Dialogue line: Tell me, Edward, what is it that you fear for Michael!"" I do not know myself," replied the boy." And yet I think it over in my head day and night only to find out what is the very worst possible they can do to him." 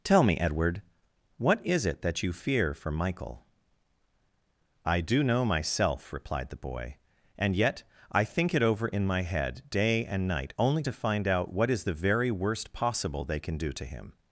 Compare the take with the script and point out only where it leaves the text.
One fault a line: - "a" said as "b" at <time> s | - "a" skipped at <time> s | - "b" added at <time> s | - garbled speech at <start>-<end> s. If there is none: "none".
- "not" skipped at 5.2 s